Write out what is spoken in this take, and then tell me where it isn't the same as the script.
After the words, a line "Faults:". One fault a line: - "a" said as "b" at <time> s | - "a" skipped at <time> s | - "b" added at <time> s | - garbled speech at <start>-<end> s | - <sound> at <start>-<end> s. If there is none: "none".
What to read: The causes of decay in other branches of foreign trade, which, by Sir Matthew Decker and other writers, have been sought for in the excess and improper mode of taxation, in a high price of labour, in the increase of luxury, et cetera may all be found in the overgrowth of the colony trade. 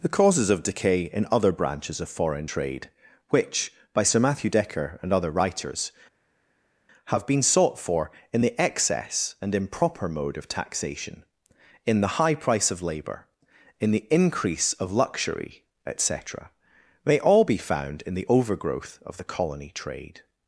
The causes of decay in other branches of foreign trade, which, by Sir Matthew Decker and other writers, have been sought for in the excess and improper mode of taxation, in the high price of labour, in the increase of luxury, et cetera may all be found in the overgrowth of the colony trade.
Faults:
- "a" said as "the" at 12.0 s